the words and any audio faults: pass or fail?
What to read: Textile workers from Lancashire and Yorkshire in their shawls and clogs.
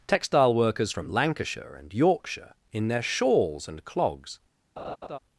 fail